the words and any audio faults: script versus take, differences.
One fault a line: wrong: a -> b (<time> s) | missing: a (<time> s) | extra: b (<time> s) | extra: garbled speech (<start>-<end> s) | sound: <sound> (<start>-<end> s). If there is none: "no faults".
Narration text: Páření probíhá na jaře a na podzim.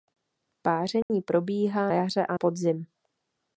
sound: dropout (1.0-1.1 s)
missing: na (1.9 s)
missing: na (2.4 s)